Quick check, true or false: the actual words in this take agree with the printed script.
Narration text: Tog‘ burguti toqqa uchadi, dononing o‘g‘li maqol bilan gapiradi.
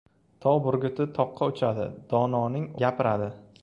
false